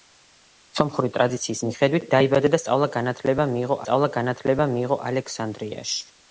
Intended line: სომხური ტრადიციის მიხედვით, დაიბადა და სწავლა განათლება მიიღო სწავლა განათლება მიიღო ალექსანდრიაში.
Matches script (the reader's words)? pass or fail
pass